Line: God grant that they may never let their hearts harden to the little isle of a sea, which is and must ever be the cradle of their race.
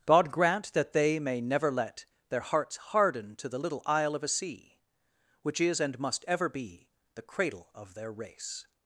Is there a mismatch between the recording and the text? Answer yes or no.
no